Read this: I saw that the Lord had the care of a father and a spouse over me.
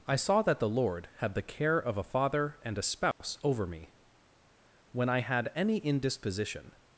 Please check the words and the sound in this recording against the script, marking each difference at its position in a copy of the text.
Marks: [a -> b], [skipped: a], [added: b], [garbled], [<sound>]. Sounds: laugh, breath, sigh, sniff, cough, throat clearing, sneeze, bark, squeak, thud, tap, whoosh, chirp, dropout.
I saw that the Lord had the care of a father and a spouse [dropout] over me. [added: When I had any indisposition]